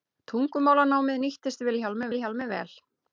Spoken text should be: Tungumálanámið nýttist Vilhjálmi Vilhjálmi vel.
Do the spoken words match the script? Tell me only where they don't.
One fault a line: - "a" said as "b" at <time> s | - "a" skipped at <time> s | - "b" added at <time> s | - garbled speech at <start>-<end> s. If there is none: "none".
none